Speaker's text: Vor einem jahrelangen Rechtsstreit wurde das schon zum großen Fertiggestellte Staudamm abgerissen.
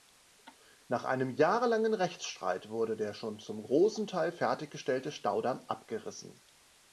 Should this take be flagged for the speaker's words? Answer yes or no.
yes